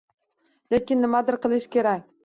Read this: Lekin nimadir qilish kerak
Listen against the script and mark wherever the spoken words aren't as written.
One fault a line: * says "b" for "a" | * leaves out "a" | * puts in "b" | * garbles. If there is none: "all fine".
all fine